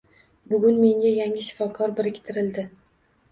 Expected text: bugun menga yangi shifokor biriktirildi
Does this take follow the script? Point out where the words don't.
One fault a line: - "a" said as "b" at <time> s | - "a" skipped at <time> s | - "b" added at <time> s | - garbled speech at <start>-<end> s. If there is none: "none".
none